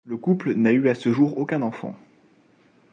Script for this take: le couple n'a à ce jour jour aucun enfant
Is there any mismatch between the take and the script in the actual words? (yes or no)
yes